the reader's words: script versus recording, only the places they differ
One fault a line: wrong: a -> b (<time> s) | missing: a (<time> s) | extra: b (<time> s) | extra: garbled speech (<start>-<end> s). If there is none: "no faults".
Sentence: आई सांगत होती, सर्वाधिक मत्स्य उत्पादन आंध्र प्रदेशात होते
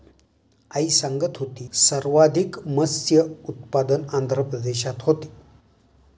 no faults